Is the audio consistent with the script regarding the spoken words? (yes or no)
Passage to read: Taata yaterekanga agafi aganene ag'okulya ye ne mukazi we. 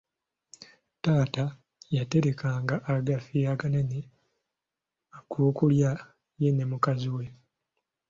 yes